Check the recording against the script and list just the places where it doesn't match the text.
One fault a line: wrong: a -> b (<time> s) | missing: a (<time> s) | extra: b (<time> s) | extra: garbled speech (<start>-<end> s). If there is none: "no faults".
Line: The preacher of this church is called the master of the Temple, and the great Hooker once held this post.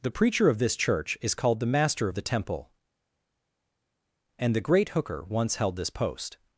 no faults